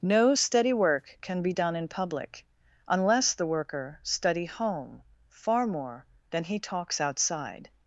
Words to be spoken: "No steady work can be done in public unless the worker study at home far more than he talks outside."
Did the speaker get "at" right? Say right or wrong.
wrong